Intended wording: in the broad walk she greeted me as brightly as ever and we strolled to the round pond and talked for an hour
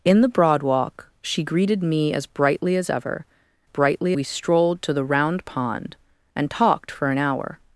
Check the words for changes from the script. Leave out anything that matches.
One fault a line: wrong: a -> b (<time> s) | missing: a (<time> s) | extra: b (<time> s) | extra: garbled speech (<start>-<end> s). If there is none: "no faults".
wrong: and -> brightly (3.6 s)